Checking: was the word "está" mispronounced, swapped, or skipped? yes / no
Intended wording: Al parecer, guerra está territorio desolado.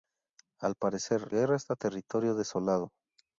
no